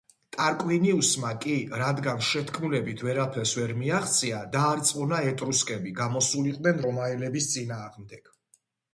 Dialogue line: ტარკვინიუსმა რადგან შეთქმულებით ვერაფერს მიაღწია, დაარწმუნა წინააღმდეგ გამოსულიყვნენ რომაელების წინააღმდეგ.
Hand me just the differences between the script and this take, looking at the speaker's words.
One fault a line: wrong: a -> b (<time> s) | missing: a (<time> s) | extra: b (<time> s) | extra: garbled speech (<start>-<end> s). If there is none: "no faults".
extra: კი (1.4 s)
extra: ვერ (3.6 s)
wrong: წინააღმდეგ -> ეტრუსკები (5.3 s)